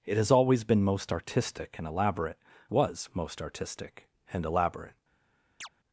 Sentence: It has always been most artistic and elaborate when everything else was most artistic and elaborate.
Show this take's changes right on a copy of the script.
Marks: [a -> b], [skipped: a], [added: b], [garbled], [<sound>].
It has always been most artistic and elaborate [skipped: when everything else] was most artistic and elaborate. [chirp]